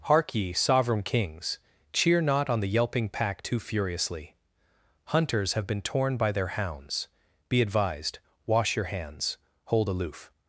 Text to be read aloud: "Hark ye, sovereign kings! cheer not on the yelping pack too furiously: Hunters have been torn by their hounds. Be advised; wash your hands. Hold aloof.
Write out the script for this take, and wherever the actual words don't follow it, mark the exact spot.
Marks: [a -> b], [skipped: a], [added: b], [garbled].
"Hark ye, sovereign kings! cheer not on the yelping pack too furiously: Hunters have been torn by their hounds. Be advised; wash your hands. Hold aloof.